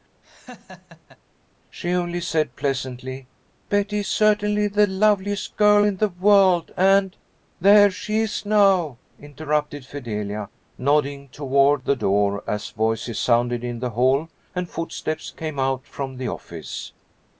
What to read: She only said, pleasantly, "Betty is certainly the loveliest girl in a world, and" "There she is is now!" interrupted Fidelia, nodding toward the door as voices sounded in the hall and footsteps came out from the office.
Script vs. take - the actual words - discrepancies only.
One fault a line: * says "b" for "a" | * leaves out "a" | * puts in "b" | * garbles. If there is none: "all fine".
* says "the" for "a"
* leaves out "is"